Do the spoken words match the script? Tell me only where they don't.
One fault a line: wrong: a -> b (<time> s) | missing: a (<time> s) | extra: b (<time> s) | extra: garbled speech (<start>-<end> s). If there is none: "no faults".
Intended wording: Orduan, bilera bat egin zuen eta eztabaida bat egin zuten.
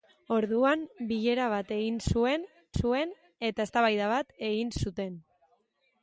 extra: zuen (2.8 s)